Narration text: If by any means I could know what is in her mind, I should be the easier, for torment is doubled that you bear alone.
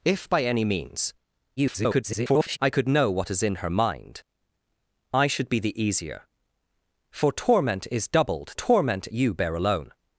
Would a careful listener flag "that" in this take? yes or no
yes